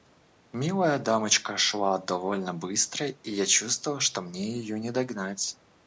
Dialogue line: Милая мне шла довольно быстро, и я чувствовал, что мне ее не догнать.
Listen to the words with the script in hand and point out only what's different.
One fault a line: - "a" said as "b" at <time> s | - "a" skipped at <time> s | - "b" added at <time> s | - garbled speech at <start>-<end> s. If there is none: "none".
- "мне" said as "дамочка" at 1.0 s